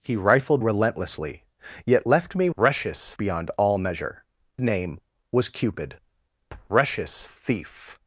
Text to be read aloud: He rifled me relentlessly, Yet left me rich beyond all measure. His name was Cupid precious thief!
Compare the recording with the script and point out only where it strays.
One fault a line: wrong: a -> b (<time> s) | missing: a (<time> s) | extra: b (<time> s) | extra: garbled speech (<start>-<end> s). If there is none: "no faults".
missing: me (0.6 s)
wrong: rich -> precious (2.6 s)
missing: His (4.2 s)